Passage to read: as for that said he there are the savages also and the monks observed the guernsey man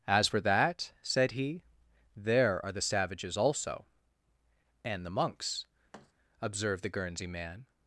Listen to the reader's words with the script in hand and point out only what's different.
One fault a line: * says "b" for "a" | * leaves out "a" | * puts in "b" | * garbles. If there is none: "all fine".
all fine